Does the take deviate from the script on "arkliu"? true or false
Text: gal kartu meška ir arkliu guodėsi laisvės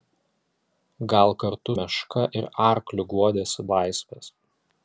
false